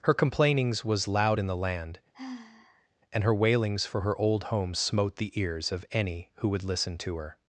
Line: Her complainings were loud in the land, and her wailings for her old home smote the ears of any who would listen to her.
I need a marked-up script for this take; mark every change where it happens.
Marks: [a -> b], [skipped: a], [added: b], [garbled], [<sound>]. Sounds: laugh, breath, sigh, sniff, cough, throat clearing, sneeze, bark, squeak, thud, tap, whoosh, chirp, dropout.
Her complainings [were -> was] loud in the land, [sigh] and her wailings for her old home smote the ears of any who would listen to her.